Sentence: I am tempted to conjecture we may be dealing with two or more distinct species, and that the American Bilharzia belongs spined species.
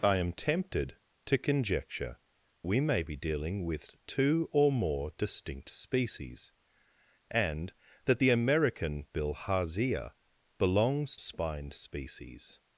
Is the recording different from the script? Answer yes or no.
no